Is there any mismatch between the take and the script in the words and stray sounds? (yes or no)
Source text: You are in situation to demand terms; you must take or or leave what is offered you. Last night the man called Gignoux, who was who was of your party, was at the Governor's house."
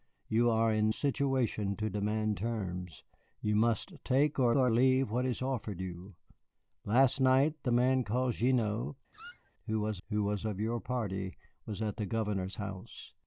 yes